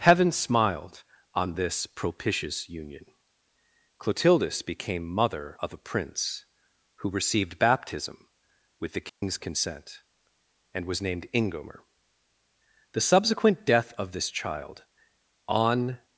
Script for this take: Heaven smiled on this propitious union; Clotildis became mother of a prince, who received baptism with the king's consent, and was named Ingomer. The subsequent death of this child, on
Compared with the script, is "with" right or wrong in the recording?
right